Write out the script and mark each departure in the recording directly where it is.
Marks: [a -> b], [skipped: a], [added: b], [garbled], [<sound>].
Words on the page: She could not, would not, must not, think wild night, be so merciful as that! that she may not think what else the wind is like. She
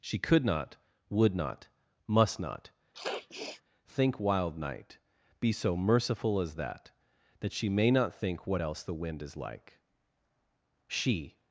She could not, would not, must not, [sniff] think wild night, be so merciful as that! that she may not think what else the wind is like. She